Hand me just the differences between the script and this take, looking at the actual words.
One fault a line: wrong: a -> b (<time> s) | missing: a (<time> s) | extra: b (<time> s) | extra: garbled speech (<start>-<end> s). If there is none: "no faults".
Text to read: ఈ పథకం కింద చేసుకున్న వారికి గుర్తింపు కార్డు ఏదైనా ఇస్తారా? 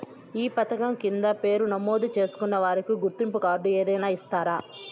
extra: పేరు నమోదు (1.4 s)